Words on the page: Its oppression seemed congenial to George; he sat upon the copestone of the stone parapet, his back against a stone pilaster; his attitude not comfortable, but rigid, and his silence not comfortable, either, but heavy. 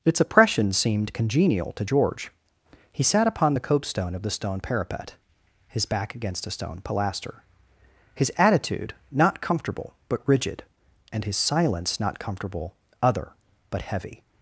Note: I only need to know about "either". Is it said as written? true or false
false